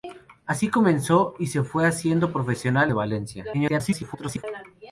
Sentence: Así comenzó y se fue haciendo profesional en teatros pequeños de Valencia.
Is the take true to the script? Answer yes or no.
no